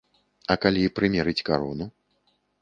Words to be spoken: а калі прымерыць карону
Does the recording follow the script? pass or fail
pass